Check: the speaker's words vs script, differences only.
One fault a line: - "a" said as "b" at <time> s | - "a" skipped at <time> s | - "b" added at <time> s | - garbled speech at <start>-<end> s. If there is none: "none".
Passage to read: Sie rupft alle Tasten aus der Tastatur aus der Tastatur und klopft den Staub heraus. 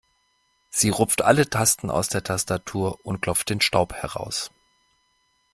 - "aus der Tastatur" skipped at 3.0 s